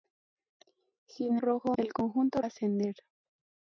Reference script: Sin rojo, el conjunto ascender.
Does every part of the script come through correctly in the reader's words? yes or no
yes